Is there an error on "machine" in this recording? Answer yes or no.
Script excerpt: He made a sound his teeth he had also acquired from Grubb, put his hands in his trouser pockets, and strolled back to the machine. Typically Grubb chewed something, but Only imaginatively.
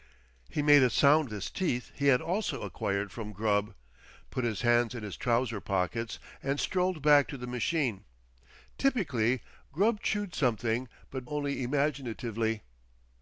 no